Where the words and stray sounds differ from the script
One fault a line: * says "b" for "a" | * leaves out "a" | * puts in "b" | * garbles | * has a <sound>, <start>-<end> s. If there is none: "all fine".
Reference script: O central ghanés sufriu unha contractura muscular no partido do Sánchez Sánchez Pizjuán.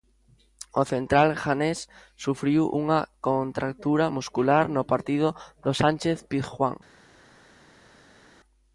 * leaves out "Sánchez"